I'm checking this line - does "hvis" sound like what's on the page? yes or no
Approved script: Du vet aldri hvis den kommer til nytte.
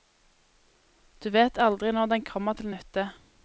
no